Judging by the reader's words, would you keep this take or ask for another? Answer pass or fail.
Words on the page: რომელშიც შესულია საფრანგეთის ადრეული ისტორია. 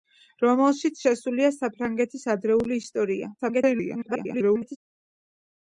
fail